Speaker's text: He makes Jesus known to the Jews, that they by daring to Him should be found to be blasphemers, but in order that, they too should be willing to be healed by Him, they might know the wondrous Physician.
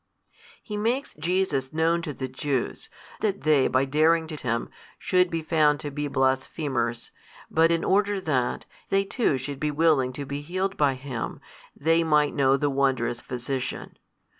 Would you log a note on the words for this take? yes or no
no